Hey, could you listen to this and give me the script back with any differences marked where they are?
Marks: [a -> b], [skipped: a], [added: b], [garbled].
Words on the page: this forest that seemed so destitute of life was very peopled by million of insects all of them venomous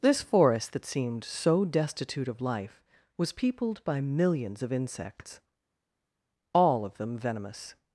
this forest that seemed so destitute of life was [skipped: very] peopled by [million -> millions] of insects all of them venomous